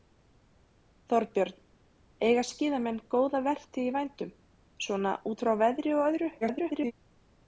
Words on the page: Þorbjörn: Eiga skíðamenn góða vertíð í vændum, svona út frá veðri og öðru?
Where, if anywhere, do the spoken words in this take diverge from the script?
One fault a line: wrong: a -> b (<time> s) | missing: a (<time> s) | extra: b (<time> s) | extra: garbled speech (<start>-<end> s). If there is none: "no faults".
extra: garbled speech (6.4-6.9 s)